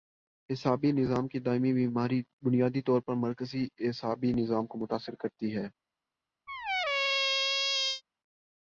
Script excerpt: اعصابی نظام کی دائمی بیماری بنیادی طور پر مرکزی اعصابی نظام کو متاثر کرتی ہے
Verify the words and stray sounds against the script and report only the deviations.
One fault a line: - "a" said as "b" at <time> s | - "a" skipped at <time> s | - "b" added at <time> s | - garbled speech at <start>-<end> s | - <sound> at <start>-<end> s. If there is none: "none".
- squeak at 6.5-8.0 s